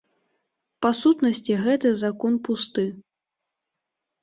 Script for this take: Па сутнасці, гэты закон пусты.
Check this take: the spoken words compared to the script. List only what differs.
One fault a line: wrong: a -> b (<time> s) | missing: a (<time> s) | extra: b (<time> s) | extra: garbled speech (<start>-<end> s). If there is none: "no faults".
no faults